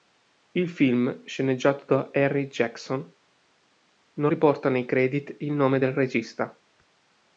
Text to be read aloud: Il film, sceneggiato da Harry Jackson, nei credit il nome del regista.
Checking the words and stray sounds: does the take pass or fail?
fail